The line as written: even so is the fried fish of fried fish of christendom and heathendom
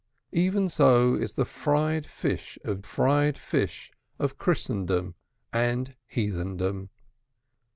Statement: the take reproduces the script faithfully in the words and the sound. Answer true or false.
true